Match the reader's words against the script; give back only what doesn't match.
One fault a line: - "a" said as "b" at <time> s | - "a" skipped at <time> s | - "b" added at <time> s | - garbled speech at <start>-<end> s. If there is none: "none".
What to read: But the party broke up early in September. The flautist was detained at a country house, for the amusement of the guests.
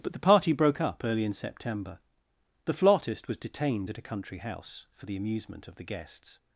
none